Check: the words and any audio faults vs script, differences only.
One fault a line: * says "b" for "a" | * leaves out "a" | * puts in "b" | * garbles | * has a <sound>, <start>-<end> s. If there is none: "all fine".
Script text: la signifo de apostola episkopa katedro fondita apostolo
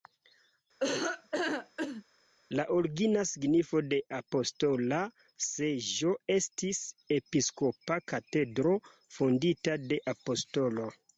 * has a laugh, 0.8-2.0 s
* puts in "origina"
* puts in "seĝo estis"
* puts in "de"